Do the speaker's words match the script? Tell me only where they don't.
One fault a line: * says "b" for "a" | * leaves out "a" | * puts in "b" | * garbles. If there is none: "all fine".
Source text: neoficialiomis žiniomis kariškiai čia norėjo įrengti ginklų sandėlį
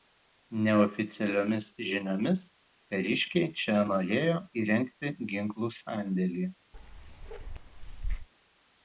all fine